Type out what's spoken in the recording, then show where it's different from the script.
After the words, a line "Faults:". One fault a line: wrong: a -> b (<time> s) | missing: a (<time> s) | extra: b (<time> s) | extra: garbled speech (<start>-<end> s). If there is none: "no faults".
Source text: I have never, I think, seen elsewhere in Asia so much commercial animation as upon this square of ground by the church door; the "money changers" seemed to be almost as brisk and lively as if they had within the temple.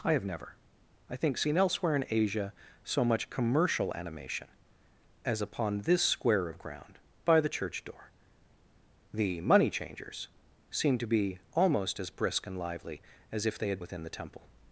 I have never, I think, seen elsewhere in Asia so much commercial animation as upon this square of ground by the church door; the "money changers" seemed to be almost as brisk and lively as if they had within the temple.
Faults:
no faults